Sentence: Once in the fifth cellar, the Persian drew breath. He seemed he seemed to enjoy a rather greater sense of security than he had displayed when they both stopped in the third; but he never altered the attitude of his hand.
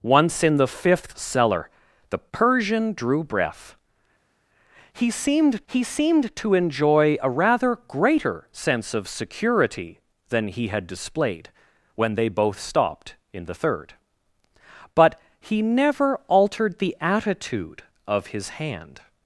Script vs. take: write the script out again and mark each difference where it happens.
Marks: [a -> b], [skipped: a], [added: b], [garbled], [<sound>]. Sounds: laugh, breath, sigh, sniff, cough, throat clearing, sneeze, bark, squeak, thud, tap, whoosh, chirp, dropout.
Once in the fifth cellar, the Persian drew breath. He seemed he seemed to enjoy a rather greater sense of security than he had displayed when they both stopped in the third; but he never altered the attitude of his hand.